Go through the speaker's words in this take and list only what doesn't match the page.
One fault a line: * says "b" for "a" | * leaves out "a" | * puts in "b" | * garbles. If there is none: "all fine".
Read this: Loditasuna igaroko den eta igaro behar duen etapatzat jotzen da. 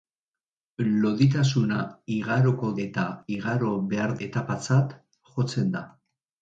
* leaves out "den"
* leaves out "duen"